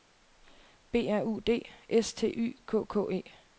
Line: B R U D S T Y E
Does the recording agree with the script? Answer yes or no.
no